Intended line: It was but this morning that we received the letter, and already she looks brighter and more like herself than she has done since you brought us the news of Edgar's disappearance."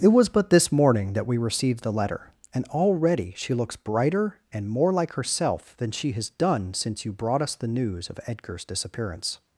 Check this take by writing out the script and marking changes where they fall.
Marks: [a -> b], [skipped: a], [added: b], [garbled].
It was but this morning that we received the letter, and already she looks brighter and more like herself than she has done since you brought us the news of Edgar's disappearance."